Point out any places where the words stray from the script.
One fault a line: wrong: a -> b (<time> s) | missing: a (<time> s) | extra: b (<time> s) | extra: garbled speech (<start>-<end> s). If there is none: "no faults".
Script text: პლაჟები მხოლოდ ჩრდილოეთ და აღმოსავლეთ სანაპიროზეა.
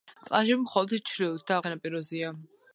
missing: აღმოსავლეთ (1.6 s)